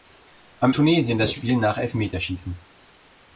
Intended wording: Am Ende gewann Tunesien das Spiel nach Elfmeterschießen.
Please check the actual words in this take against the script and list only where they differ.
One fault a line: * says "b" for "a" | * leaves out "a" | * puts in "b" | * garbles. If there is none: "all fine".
* leaves out "Ende gewann"